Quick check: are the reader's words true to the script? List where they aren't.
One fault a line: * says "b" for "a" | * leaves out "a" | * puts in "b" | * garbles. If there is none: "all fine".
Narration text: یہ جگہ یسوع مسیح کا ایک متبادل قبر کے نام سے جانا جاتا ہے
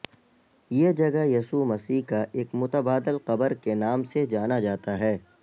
all fine